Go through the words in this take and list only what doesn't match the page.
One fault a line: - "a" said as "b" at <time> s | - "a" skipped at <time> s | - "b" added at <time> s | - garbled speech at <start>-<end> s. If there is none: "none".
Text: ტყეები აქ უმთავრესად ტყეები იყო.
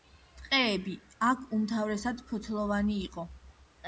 - "ტყეები" said as "ფოთლოვანი" at 2.3 s